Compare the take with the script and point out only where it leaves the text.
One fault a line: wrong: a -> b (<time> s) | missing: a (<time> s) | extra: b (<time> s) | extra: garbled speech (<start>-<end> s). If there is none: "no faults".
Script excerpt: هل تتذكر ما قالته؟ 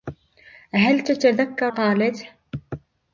missing: ما (1.7 s)